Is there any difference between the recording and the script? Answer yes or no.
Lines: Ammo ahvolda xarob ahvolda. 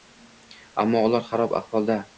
yes